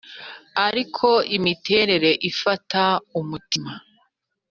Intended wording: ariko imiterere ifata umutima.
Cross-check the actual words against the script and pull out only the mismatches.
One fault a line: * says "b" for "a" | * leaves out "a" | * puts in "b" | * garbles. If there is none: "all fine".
all fine